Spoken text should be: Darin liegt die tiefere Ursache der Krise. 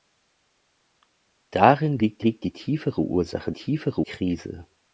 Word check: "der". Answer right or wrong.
wrong